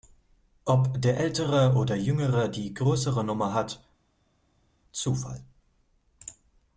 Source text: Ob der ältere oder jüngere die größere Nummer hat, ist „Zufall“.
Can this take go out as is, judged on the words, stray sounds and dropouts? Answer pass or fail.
fail